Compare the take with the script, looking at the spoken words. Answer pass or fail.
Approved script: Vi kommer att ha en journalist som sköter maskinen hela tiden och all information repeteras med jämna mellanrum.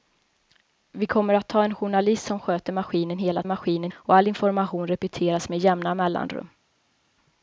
fail